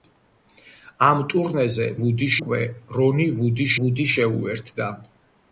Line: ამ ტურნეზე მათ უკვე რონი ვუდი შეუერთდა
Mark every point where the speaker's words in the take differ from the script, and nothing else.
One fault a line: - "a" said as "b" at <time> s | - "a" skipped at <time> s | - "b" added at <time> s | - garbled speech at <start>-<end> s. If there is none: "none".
- "მათ" said as "ვუდი" at 2.0 s
- "ვუდი" added at 3.8 s